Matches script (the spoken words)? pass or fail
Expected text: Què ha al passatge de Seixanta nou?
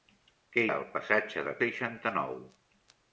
pass